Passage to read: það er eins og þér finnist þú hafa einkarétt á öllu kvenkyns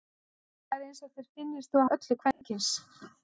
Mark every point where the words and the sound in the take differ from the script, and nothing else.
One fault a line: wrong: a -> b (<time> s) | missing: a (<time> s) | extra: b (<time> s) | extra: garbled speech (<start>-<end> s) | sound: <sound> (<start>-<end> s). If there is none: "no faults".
missing: hafa einkarétt (1.9 s)
sound: dropout (2.3-2.4 s)